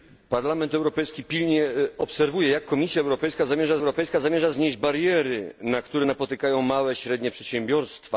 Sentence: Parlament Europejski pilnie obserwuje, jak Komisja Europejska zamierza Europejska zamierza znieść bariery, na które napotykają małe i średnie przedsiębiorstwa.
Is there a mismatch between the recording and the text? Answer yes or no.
no